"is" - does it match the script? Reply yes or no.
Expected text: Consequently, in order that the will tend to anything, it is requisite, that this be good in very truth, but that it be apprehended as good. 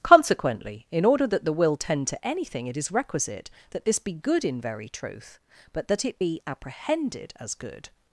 yes